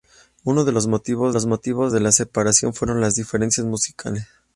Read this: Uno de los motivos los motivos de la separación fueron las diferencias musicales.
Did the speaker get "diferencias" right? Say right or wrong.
right